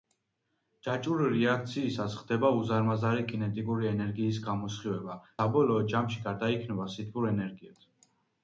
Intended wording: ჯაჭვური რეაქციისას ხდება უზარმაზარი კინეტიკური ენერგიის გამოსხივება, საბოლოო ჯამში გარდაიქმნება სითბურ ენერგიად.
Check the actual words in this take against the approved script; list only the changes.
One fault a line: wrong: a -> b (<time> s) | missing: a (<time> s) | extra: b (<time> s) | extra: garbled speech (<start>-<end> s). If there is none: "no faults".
no faults